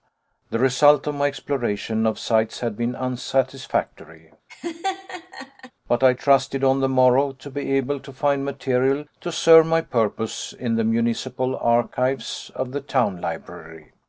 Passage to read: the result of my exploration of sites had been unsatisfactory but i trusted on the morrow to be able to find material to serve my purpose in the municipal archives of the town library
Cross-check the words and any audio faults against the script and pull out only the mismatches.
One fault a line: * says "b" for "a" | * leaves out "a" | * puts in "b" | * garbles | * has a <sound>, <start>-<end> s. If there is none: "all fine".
* has a laugh, 4.5-5.7 s